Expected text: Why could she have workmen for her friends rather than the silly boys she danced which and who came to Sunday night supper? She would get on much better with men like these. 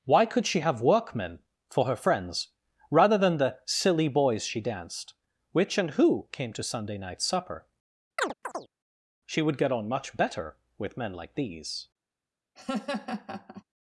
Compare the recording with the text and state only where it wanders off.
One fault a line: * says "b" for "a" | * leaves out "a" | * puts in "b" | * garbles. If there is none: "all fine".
all fine